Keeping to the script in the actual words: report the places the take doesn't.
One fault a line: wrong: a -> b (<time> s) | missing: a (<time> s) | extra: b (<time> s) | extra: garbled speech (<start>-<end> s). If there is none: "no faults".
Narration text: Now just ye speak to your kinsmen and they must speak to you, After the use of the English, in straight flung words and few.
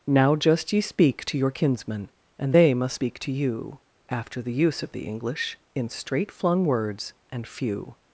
no faults